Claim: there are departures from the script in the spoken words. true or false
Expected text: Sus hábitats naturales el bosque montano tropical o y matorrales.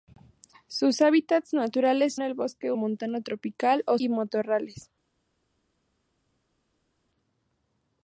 false